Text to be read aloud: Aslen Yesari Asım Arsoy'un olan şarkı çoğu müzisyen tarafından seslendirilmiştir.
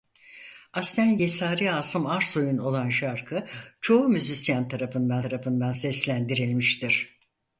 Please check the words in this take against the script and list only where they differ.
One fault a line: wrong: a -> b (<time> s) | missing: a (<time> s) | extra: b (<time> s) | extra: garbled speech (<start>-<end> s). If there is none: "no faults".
extra: tarafından (5.2 s)